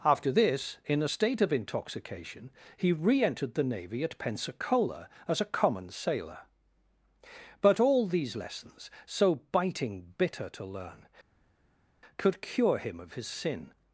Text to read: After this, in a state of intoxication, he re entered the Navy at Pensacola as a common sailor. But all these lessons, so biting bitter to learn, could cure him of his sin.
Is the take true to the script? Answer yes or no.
yes